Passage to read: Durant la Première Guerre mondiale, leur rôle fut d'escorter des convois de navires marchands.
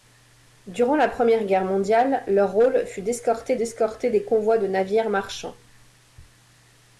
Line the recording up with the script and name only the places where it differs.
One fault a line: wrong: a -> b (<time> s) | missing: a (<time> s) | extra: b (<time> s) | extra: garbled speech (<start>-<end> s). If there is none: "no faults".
extra: d'escorter (3.5 s)